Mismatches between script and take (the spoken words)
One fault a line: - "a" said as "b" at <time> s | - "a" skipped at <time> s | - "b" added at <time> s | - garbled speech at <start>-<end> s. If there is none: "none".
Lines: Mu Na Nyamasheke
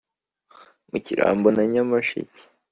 - "Kirambo" added at 1.0 s